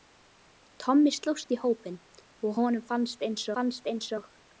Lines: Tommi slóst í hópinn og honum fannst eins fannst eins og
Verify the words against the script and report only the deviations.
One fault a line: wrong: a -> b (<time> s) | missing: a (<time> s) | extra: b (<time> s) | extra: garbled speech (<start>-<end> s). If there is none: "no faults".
no faults